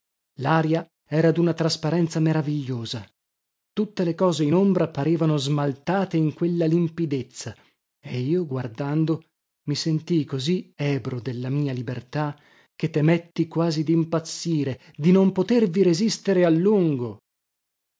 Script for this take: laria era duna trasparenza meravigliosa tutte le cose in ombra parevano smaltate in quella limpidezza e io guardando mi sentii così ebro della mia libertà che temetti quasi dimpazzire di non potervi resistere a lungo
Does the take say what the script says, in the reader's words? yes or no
yes